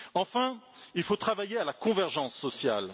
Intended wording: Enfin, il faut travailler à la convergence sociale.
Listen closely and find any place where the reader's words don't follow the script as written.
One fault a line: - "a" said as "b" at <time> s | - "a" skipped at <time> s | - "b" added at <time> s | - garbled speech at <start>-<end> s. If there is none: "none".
none